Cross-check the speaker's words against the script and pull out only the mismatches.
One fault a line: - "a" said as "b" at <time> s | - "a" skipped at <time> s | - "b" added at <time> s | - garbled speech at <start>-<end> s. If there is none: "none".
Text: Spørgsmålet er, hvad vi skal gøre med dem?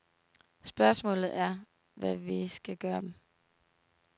- "med" skipped at 3.0 s